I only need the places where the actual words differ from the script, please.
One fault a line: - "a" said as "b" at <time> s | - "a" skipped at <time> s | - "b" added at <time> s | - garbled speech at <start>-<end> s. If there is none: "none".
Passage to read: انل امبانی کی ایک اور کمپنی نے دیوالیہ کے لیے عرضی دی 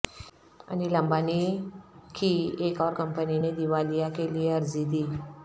none